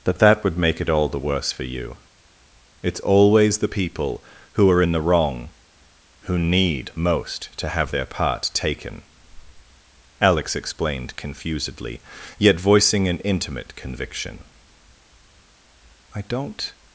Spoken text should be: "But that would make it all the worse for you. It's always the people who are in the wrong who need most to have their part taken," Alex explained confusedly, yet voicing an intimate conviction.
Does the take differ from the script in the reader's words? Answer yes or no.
yes